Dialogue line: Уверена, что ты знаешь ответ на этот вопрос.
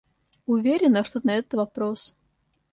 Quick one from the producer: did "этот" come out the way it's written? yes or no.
yes